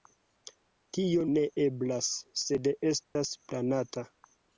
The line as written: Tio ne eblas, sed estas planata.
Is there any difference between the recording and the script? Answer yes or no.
no